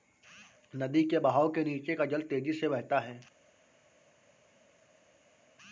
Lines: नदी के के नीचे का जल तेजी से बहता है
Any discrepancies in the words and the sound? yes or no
yes